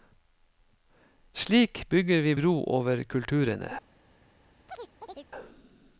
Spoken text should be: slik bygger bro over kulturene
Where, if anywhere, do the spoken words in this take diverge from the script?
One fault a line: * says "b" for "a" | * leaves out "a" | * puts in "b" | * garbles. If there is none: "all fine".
* puts in "vi"